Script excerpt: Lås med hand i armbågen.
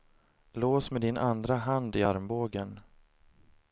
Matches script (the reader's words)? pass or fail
fail